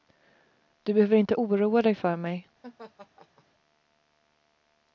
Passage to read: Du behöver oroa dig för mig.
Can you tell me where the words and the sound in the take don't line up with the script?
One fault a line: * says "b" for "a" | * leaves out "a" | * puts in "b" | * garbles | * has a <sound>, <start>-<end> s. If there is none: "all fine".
* puts in "inte"
* has a laugh, 2.6-3.4 s